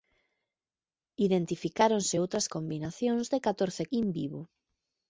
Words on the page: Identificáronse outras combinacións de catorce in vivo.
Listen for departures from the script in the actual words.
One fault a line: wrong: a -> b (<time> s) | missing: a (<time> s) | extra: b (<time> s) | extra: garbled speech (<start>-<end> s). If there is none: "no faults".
no faults